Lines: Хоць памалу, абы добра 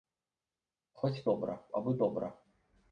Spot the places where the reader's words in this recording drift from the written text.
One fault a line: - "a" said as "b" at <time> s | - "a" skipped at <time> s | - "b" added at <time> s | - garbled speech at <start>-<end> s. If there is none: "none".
- "памалу" said as "добра" at 1.3 s